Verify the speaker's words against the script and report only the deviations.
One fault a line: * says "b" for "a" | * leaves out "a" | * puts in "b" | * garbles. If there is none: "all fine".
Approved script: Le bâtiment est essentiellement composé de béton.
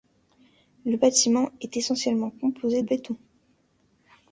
* leaves out "de"